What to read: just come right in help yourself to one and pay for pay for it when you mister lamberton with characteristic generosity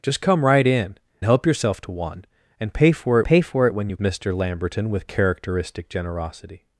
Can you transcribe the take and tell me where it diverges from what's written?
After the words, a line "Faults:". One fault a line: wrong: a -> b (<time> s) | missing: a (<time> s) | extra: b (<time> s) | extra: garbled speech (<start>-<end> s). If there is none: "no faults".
just come right in help yourself to one and pay for pay for it when you mister lamberton with characteristic generosity
Faults:
no faults